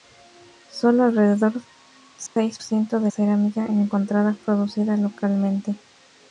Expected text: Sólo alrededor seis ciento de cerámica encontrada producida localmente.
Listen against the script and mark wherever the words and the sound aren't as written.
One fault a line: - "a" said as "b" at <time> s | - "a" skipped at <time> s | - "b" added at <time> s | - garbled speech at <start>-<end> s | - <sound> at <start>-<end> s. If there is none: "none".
- dropout at 2.3-2.4 s